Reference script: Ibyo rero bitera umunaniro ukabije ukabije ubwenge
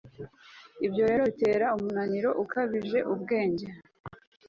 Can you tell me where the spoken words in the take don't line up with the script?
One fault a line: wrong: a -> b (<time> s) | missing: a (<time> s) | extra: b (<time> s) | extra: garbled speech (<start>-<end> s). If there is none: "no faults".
missing: ukabije (3.0 s)